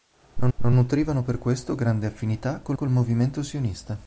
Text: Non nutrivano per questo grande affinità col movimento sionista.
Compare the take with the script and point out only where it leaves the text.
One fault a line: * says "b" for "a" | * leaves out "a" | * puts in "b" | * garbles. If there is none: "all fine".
* puts in "non"
* puts in "col"